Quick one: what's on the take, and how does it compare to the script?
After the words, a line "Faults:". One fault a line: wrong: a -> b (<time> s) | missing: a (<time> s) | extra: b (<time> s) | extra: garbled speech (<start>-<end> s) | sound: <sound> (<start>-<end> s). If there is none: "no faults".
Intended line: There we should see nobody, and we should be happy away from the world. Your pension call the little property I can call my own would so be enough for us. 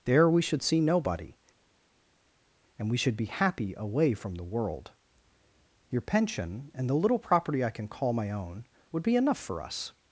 There we should see nobody, and we should be happy away from the world. Your pension and the little property I can call my own would be enough for us.
Faults:
wrong: call -> and (6.7 s)
missing: so (9.0 s)